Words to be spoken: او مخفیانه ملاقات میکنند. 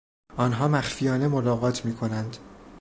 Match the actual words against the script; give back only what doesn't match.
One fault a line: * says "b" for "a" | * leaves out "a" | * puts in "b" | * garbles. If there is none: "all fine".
* says "آنها" for "او"